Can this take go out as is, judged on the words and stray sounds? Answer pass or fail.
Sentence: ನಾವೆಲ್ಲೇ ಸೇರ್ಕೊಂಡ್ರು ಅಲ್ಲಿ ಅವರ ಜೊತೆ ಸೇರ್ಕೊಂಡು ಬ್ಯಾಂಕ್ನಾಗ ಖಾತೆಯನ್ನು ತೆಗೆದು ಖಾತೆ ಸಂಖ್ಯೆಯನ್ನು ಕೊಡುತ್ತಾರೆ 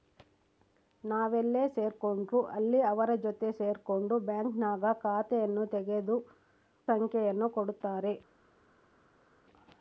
fail